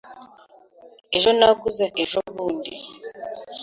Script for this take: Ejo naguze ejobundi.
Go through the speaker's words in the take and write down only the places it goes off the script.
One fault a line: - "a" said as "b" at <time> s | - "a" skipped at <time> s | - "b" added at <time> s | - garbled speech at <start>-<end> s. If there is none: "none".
none